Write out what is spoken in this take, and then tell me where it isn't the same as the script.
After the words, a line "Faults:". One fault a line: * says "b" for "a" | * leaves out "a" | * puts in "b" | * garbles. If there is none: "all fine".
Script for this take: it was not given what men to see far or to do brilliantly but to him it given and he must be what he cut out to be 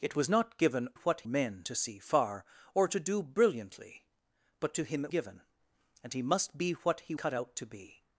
it was not given what men to see far or to do brilliantly but to him it given and he must be what he cut out to be
Faults:
all fine